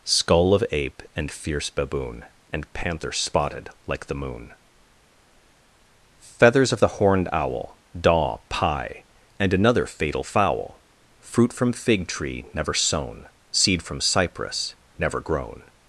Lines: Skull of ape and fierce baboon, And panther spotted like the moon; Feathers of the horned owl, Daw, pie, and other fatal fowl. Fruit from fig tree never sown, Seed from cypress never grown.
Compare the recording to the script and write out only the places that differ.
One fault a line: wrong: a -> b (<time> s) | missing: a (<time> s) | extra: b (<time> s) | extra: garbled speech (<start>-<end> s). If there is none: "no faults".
wrong: other -> another (9.5 s)